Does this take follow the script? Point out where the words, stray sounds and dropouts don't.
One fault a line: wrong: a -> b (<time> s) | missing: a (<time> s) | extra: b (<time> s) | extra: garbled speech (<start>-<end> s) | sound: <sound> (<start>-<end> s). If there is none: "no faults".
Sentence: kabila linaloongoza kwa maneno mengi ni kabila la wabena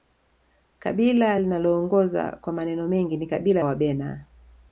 missing: la (3.6 s)